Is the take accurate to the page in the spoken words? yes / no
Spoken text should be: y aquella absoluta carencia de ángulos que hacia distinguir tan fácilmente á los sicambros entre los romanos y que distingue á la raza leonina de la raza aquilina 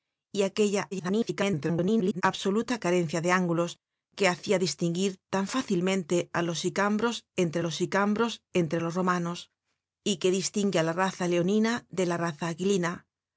no